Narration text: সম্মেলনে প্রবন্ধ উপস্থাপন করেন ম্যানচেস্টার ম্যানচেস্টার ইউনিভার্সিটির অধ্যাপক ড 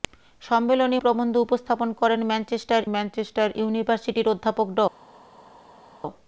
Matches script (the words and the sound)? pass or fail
pass